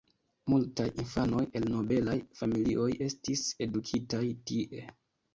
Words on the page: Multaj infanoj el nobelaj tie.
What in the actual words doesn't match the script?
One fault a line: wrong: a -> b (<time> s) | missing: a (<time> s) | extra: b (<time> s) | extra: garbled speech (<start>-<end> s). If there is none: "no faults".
extra: familioj estis edukitaj (2.4 s)